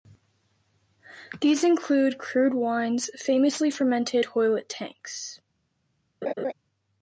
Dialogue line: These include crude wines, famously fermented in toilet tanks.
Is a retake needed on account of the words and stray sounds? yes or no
yes